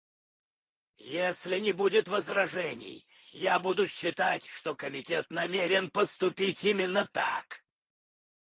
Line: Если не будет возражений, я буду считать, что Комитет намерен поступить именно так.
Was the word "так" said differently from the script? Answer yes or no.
no